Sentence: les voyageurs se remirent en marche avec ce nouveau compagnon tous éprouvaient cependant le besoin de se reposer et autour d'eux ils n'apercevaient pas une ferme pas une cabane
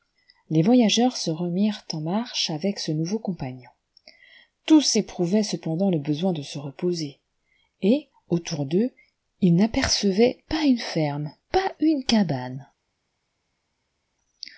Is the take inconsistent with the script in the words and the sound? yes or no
no